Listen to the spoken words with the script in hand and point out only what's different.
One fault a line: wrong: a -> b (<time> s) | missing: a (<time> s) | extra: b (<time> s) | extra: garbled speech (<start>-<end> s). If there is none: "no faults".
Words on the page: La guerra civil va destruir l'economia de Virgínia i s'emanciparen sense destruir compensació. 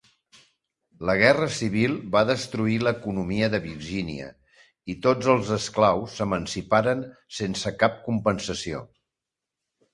extra: tots els esclaus (5.0 s)
wrong: destruir -> cap (7.8 s)